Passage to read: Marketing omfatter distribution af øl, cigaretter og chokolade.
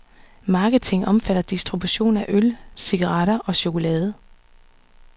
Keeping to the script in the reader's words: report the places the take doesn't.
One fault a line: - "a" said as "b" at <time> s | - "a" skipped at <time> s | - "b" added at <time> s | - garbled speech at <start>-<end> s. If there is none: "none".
none